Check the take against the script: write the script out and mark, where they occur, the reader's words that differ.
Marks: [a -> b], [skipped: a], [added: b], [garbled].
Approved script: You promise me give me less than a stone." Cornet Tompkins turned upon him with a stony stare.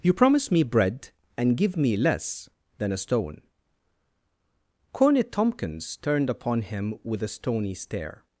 You promise me [added: bread and] give me less than a stone." Cornet Tompkins turned upon him with a stony stare.